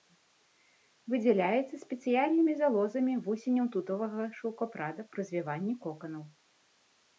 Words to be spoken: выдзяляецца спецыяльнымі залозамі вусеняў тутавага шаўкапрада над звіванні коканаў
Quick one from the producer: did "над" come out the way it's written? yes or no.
no